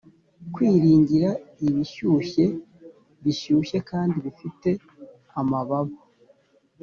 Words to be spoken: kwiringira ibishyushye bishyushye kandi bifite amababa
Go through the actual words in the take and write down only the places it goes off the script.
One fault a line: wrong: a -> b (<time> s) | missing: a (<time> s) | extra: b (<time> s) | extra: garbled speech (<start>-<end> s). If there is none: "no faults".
no faults